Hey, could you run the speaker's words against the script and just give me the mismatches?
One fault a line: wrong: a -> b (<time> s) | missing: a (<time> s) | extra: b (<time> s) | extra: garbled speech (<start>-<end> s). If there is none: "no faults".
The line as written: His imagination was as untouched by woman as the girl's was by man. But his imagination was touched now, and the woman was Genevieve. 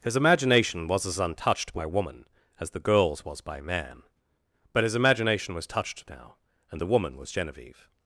no faults